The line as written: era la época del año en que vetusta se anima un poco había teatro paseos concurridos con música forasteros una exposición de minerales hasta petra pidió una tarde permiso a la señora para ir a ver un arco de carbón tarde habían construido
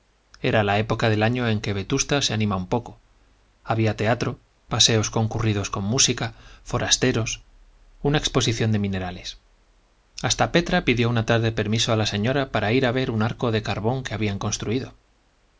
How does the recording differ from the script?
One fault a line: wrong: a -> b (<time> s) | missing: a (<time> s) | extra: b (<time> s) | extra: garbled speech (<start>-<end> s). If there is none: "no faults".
wrong: tarde -> que (14.0 s)